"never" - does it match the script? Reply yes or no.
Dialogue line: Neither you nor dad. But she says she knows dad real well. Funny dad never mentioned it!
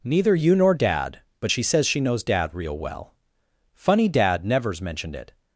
no